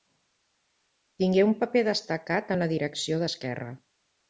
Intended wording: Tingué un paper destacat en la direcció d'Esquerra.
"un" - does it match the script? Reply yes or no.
yes